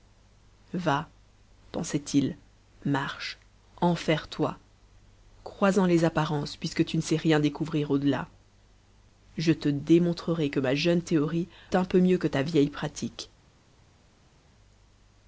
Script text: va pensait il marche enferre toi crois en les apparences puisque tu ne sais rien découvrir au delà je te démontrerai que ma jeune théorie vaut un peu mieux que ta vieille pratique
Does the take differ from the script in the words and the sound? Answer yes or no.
yes